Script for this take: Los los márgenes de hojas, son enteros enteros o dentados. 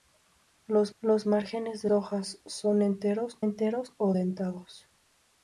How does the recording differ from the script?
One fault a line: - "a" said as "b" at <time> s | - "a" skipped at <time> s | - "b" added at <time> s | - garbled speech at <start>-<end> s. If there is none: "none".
none